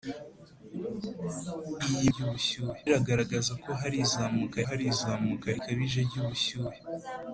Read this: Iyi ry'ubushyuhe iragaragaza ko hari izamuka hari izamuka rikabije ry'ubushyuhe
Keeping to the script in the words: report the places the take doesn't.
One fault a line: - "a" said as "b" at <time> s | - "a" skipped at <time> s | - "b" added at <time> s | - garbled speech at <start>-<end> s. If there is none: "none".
none